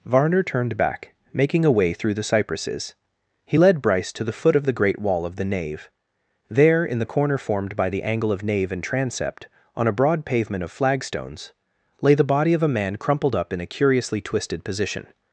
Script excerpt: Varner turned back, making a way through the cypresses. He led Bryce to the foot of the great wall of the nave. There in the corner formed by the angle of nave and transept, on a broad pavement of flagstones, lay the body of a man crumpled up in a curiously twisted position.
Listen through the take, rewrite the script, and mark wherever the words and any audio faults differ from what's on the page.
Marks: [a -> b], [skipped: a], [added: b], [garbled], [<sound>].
Varner turned back, making a way through the cypresses. He led Bryce to the foot of the great wall of the nave. There in the corner formed by the angle of nave and transept, on a broad pavement of flagstones, lay the body of a man crumpled up in a curiously twisted position.